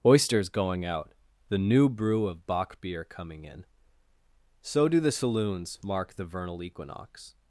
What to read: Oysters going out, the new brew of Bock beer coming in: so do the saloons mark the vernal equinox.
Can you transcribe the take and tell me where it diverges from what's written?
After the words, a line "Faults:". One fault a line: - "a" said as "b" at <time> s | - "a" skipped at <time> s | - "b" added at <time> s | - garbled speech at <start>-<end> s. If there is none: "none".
Oysters going out, the new brew of Bock beer coming in: so do the saloons mark the vernal equinox.
Faults:
none